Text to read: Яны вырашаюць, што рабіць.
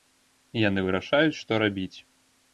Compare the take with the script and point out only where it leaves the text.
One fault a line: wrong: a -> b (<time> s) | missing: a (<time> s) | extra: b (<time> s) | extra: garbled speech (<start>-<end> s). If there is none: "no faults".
no faults